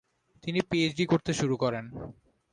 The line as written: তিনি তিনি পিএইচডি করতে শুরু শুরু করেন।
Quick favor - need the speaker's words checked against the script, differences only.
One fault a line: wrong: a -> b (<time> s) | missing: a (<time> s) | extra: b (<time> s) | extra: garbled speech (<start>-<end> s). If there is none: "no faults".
missing: তিনি (0.6 s)
missing: শুরু (1.6 s)